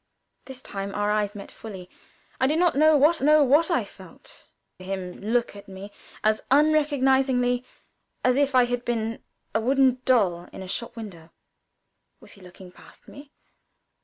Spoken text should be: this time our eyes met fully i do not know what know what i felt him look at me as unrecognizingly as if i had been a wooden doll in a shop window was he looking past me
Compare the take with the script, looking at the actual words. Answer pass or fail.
pass